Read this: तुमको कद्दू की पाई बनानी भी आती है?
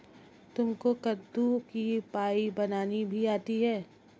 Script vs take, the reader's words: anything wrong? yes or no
no